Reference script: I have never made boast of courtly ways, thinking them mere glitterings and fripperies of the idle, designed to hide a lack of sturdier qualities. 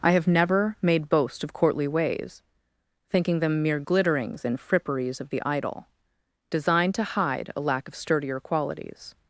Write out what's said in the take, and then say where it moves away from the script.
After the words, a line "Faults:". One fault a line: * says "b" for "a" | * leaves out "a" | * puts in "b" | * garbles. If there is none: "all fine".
I have never made boast of courtly ways, thinking them mere glitterings and fripperies of the idle, designed to hide a lack of sturdier qualities.
Faults:
all fine